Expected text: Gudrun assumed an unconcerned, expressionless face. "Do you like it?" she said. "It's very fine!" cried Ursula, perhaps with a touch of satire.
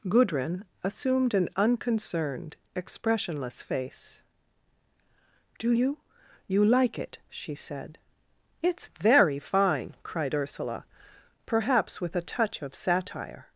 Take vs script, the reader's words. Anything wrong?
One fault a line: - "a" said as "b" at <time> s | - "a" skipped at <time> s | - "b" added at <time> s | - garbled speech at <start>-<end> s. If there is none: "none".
- "you" added at 6.5 s